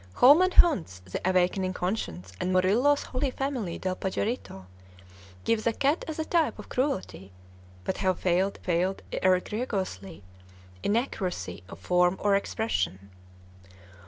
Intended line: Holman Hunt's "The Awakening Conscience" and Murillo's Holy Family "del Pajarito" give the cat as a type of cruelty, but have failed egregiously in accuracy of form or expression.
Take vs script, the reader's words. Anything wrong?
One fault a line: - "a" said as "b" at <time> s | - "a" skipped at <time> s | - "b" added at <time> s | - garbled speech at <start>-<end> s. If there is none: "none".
- "failed" added at 8.6 s